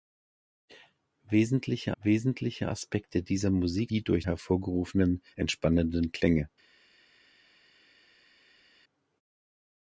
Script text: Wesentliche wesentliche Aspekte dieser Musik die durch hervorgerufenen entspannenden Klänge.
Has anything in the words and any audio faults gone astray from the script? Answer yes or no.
no